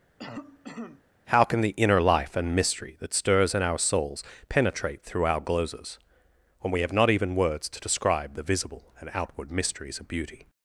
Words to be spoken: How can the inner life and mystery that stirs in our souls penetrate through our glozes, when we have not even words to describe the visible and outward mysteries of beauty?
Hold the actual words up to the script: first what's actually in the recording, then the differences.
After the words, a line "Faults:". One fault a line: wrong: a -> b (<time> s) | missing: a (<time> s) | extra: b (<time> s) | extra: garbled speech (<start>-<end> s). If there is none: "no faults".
How can the inner life and mystery that stirs in our souls penetrate through our glozes, when we have not even words to describe the visible and outward mysteries of beauty?
Faults:
no faults